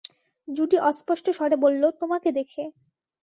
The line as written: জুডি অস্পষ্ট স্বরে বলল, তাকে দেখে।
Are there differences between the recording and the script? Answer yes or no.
yes